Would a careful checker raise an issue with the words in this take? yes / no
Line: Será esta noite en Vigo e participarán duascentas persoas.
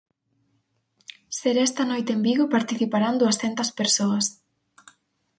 no